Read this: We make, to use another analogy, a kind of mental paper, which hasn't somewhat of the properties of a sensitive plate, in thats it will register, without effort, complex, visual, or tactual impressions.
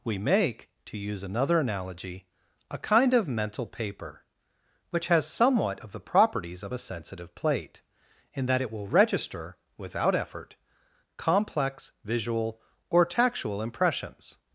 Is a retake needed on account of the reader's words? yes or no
yes